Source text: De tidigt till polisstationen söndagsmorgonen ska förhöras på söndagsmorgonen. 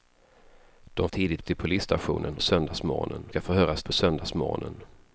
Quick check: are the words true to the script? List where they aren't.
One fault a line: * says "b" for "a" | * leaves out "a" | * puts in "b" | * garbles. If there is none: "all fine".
all fine